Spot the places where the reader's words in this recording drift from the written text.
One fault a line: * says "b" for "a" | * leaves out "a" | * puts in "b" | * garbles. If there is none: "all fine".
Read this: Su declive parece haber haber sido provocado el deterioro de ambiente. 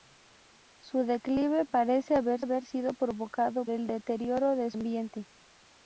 all fine